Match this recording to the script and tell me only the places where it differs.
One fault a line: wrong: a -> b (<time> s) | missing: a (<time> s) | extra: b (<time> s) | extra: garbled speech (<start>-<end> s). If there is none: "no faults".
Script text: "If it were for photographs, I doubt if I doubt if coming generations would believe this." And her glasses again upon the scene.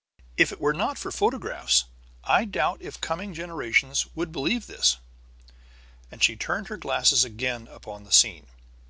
extra: not (0.7 s)
missing: I doubt if (3.0 s)
extra: she turned (6.2 s)